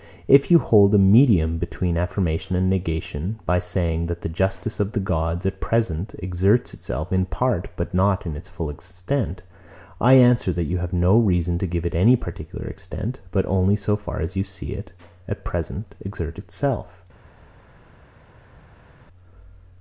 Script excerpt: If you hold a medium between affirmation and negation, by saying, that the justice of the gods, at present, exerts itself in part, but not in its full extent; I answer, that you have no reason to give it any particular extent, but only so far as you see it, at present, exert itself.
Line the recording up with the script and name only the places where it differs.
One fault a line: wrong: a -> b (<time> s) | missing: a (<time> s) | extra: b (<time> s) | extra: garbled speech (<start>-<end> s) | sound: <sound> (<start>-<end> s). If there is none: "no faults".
no faults